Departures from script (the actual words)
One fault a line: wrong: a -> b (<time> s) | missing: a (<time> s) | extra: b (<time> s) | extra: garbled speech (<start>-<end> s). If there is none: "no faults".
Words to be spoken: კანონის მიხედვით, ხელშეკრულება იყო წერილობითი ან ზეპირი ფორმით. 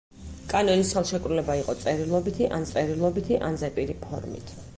missing: მიხედვით (0.9 s)
extra: წერილობითი ან (2.7 s)